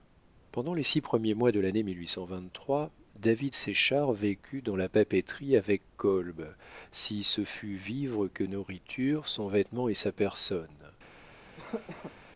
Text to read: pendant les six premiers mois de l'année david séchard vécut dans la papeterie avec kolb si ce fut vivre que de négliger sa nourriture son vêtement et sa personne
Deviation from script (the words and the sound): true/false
true